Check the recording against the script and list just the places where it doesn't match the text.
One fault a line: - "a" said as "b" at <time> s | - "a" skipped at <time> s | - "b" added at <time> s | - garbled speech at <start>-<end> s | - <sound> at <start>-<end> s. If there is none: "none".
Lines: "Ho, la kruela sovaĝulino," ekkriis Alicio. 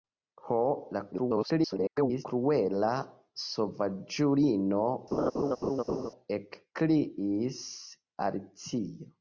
- garbled speech at 1.1-2.3 s
- laugh at 5.1-6.1 s